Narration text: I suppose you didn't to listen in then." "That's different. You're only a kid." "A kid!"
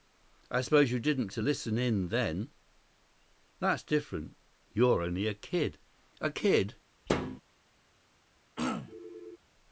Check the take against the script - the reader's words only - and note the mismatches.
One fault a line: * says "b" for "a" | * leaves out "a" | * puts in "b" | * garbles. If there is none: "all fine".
all fine